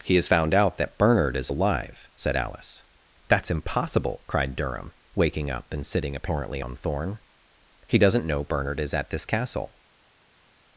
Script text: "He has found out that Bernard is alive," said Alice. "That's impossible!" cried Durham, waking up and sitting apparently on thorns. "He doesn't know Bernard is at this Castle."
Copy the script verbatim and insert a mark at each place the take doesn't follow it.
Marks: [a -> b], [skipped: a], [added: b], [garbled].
"He has found out that Bernard is alive," said Alice. "That's impossible!" cried Durham, waking up and sitting apparently on [thorns. -> thorn] "He doesn't know Bernard is at this Castle."